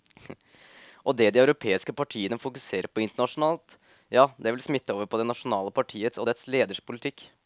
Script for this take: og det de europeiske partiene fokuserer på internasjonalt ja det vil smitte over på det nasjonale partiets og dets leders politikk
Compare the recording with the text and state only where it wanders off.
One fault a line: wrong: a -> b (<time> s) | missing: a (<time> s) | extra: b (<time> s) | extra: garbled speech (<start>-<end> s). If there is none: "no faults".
no faults